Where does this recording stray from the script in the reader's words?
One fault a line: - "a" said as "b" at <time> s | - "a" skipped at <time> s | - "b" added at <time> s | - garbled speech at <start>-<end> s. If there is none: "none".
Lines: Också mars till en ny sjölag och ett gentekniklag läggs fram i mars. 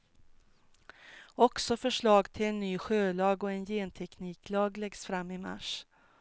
- "mars" said as "förslag" at 1.8 s
- "ett" said as "en" at 3.5 s